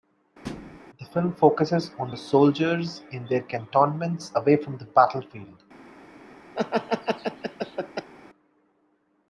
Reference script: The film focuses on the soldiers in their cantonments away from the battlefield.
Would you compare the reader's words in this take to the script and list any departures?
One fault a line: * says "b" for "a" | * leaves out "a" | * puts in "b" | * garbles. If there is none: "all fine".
all fine